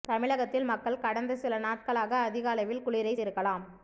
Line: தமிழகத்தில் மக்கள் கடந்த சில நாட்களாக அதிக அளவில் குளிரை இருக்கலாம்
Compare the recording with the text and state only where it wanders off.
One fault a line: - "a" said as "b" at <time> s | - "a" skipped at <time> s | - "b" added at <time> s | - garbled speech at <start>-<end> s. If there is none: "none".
none